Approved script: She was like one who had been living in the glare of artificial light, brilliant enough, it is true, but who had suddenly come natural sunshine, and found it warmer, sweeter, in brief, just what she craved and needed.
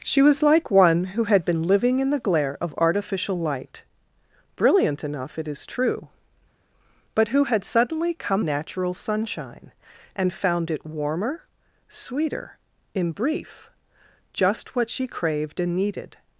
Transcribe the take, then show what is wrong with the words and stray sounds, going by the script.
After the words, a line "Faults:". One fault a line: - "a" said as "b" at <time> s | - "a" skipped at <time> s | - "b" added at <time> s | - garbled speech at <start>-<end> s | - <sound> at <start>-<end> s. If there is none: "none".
She was like one who had been living in the glare of artificial light, brilliant enough, it is true, but who had suddenly come natural sunshine, and found it warmer, sweeter, in brief, just what she craved and needed.
Faults:
none